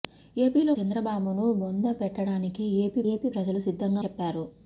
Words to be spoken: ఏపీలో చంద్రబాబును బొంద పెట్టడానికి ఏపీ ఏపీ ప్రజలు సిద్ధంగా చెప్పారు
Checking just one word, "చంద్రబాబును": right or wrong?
right